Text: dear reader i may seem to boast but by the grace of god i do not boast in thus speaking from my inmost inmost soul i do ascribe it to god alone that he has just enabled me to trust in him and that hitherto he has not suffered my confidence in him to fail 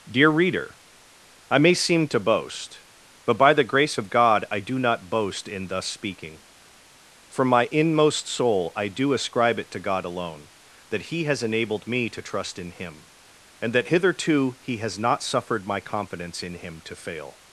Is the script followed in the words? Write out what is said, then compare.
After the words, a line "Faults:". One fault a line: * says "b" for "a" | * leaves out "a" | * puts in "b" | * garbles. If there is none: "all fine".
dear reader i may seem to boast but by the grace of god i do not boast in thus speaking from my inmost soul i do ascribe it to god alone that he has enabled me to trust in him and that hitherto he has not suffered my confidence in him to fail
Faults:
* leaves out "inmost"
* leaves out "just"